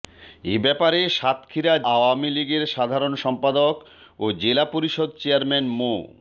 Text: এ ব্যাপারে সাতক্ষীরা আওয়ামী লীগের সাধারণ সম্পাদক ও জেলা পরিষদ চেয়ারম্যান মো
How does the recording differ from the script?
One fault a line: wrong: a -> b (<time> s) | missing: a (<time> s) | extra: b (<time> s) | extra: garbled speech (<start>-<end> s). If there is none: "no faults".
no faults